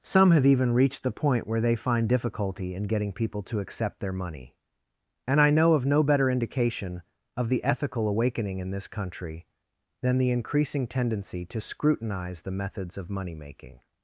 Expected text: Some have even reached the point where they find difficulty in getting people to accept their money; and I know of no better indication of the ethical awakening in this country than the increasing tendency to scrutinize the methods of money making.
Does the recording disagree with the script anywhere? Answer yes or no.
no